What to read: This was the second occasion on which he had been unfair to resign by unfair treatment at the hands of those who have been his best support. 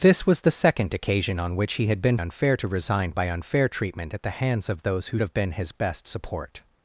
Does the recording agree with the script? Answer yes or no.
yes